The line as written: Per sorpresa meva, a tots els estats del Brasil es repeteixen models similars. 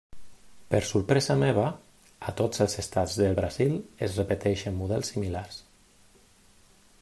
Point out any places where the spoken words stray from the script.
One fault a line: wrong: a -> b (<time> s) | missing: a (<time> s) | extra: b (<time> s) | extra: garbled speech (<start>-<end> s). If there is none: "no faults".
no faults